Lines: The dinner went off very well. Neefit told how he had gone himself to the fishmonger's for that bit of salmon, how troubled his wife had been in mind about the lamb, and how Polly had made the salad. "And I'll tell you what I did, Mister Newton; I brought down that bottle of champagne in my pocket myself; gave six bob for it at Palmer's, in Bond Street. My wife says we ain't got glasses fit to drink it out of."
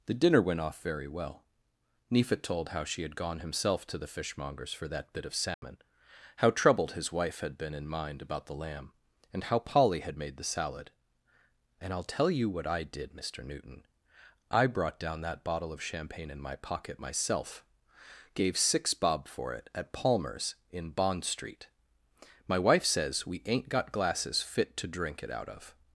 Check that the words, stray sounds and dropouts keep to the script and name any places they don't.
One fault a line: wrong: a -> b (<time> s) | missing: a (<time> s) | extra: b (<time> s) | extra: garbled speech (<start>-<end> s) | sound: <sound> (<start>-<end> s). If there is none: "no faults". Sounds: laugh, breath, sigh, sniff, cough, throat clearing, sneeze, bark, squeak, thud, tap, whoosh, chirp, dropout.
wrong: he -> she (2.8 s)
sound: dropout (5.5-5.6 s)